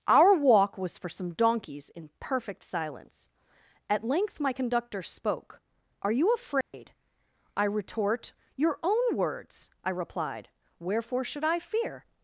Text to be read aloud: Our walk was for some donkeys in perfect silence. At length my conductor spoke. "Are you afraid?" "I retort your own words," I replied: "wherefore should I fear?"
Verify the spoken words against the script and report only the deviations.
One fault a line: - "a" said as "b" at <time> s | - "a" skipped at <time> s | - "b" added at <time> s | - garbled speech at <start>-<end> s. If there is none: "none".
none